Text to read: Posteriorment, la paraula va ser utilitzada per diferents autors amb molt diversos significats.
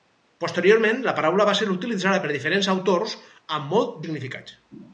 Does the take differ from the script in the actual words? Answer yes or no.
yes